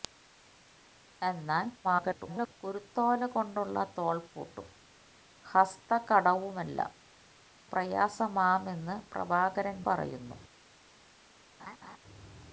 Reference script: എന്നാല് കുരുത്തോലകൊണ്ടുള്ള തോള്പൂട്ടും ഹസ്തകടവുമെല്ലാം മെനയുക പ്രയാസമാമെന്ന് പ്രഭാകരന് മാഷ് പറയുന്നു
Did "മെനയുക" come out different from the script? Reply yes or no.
yes